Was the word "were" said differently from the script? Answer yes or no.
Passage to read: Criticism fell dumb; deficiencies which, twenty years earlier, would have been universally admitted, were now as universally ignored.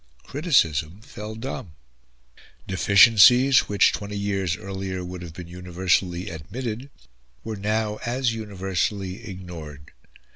no